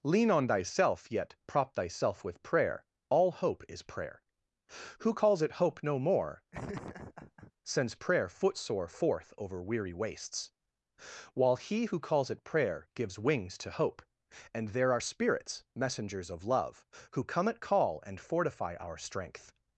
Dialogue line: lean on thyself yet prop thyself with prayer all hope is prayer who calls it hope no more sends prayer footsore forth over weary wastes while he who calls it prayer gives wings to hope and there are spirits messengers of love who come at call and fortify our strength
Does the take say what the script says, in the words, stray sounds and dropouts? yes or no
no